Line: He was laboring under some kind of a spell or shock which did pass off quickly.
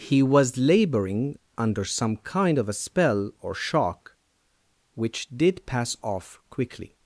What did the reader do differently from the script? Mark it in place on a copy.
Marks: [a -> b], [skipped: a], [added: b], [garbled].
He was laboring under some kind of a spell or shock which did pass off quickly.